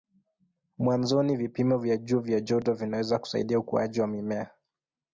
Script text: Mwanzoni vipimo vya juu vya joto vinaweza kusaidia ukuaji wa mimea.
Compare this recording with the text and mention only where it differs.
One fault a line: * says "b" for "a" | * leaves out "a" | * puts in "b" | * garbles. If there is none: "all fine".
all fine